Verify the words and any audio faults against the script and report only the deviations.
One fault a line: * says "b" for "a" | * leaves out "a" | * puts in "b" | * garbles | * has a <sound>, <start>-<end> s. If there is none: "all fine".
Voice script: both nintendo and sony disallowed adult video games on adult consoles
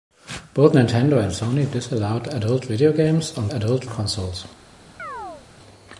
* has a chirp, 5.0-5.5 s